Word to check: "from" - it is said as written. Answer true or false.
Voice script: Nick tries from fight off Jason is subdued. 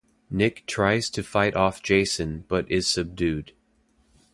false